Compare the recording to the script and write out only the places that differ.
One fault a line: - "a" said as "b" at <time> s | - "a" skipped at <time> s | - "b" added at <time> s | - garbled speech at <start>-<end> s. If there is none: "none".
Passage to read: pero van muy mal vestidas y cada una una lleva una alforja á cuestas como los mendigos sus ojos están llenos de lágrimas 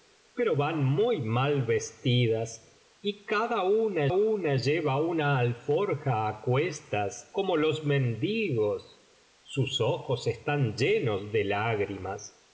none